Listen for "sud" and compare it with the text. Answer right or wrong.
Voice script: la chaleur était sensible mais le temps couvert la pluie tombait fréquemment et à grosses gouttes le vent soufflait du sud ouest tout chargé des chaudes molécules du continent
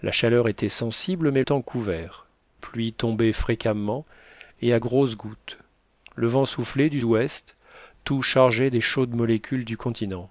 wrong